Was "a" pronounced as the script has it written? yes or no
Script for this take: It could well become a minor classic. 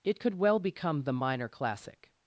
no